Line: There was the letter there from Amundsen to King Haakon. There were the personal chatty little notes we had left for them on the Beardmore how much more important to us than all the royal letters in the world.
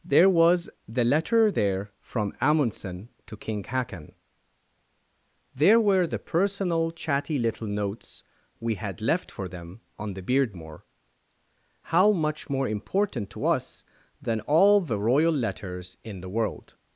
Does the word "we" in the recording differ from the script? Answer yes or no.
no